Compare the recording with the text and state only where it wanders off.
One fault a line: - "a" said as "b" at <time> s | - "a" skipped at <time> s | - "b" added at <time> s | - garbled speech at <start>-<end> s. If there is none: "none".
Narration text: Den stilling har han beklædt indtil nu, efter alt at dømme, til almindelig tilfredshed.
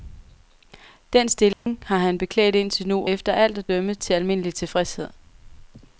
none